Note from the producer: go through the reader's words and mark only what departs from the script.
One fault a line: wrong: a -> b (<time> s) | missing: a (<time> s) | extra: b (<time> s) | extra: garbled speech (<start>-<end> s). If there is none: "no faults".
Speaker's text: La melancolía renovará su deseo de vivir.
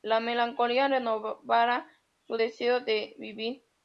no faults